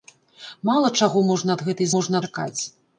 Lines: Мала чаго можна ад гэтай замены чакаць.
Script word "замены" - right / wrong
wrong